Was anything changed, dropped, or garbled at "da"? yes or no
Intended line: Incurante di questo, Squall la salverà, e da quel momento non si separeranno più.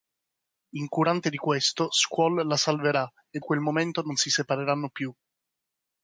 yes